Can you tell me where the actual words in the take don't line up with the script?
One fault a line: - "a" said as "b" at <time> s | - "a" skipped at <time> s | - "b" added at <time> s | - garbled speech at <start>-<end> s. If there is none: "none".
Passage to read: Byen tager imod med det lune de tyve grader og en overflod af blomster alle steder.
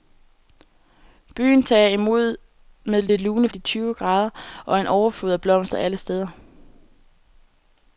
none